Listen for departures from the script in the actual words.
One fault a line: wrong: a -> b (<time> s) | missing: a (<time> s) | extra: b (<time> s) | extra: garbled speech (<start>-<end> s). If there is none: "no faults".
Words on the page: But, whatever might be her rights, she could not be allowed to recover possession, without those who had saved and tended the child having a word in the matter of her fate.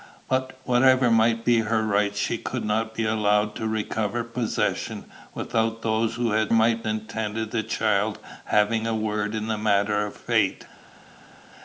wrong: saved -> might (6.5 s)
missing: her (10.2 s)